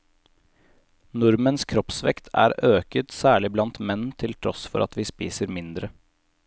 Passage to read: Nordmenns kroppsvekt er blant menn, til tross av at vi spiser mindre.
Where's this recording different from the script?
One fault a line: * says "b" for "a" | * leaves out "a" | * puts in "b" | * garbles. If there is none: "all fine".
* puts in "øket særlig"
* says "for" for "av"